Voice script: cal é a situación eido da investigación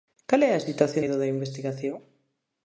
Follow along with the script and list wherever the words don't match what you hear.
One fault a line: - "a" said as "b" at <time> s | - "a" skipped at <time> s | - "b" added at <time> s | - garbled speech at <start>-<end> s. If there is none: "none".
none